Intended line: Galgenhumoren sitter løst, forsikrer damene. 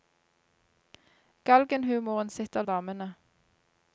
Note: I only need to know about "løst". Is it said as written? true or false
false